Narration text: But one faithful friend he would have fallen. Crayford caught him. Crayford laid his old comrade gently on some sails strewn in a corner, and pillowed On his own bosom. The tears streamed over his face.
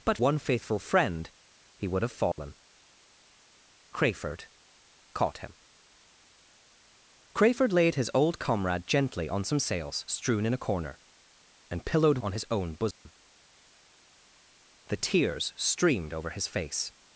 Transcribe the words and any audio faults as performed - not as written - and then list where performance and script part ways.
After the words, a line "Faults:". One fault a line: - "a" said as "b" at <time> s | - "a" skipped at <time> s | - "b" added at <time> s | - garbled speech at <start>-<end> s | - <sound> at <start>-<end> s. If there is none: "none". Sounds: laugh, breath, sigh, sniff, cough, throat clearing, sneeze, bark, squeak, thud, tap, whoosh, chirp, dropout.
But one faithful friend he would have fallen. Crayford caught him. Crayford laid his old comrade gently on some sails strewn in a corner, and pillowed On his own bosom. The tears streamed over his face.
Faults:
- dropout at 2.3-2.4 s
- dropout at 12.9-13.1 s